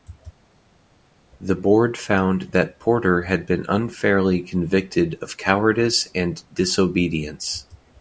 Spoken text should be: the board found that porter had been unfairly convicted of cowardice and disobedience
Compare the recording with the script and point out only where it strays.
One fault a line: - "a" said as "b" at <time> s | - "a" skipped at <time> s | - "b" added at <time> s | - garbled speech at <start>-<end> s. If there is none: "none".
none